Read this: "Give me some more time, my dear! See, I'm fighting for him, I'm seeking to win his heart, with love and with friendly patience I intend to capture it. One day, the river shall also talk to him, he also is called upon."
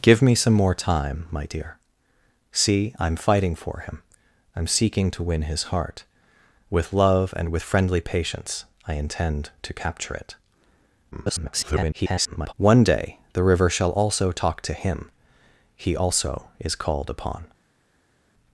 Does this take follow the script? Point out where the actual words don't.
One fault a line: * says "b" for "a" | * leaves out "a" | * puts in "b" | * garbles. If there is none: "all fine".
* garbles